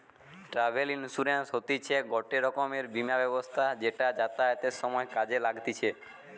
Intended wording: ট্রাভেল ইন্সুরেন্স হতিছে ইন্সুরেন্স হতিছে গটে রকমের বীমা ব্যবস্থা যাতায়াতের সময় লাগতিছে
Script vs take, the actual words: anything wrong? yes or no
yes